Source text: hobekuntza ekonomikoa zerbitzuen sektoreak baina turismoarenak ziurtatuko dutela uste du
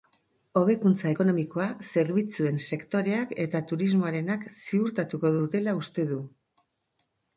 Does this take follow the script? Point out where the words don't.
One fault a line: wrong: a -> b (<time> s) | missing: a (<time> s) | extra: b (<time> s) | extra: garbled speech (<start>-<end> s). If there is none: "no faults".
wrong: baina -> eta (3.5 s)